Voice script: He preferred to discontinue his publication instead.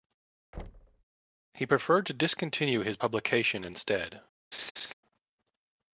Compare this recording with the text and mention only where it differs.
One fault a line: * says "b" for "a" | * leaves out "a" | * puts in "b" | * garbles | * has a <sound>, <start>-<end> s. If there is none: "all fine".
* has a thud, 0.5-1.0 s
* has a laugh, 4.5-4.9 s